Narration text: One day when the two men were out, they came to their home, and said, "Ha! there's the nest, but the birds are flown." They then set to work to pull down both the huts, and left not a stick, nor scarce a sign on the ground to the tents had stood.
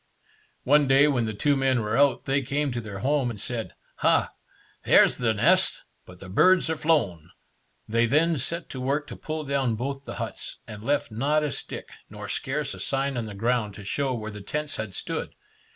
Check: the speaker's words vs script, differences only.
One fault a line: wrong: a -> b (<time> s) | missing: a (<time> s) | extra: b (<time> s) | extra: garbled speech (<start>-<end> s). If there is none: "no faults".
extra: show where (13.8 s)